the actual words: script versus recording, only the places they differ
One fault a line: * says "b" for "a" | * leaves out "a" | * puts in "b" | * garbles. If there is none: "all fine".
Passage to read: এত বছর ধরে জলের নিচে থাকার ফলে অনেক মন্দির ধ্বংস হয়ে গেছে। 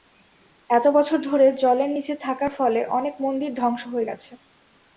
all fine